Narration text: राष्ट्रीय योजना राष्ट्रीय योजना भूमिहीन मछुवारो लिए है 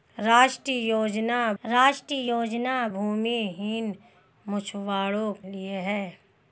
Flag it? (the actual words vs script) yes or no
no